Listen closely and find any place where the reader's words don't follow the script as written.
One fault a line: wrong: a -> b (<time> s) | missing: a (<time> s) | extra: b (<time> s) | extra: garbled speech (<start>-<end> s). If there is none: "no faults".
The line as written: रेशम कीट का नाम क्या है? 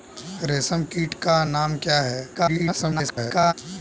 extra: garbled speech (2.3-3.5 s)